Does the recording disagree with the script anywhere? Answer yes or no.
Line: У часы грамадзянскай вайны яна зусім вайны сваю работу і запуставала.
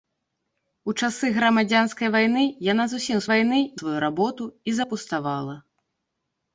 no